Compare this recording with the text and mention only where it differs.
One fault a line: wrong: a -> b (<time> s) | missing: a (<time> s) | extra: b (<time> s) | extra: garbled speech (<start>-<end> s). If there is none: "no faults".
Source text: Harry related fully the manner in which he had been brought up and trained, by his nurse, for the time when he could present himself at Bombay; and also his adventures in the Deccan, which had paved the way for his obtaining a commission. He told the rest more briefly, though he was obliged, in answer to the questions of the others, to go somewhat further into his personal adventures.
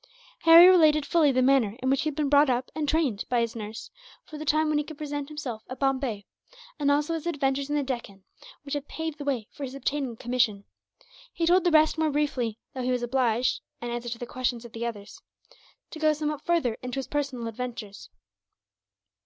no faults